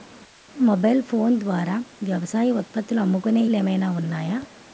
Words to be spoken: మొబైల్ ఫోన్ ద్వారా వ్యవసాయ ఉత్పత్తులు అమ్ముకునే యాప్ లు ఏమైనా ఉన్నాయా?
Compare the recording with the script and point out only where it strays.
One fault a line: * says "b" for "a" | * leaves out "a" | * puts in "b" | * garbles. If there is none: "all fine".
* leaves out "యాప్"